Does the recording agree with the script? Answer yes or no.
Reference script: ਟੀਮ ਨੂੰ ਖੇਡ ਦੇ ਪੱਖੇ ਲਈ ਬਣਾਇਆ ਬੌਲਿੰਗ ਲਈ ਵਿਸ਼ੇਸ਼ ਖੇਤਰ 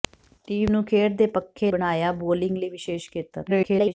no